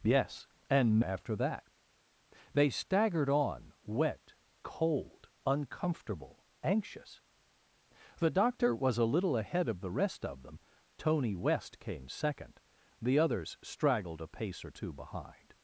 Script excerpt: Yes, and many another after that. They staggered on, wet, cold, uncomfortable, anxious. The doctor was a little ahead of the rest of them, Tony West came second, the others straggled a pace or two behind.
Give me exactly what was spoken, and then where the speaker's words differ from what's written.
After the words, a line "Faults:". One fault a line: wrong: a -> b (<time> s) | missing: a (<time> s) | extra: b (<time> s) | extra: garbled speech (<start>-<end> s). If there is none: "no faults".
Yes, and after that. They staggered on, wet, cold, uncomfortable, anxious. The doctor was a little ahead of the rest of them, Tony West came second, the others straggled a pace or two behind.
Faults:
missing: many another (1.0 s)